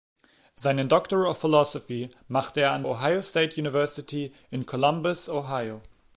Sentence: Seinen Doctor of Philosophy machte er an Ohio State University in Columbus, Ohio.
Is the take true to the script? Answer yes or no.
yes